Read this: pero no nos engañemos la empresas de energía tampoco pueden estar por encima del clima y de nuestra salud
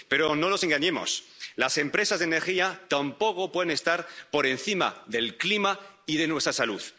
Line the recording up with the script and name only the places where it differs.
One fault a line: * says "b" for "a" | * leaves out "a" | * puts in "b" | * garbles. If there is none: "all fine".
* says "las" for "la"